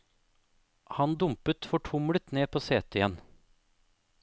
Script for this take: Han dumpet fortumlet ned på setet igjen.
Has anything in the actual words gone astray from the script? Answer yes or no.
no